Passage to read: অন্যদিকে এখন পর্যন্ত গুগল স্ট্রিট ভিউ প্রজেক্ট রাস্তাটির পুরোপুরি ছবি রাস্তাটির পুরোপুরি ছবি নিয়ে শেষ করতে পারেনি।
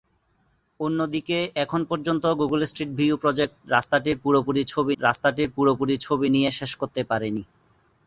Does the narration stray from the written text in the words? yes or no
no